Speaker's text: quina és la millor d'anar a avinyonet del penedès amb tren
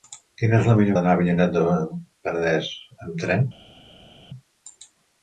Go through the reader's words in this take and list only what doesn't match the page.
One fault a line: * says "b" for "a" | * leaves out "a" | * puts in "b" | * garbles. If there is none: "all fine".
all fine